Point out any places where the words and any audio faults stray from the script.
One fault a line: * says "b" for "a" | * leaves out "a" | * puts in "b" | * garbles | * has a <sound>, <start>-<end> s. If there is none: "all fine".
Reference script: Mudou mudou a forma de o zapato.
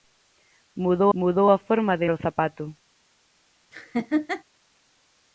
* has a laugh, 3.7-4.4 s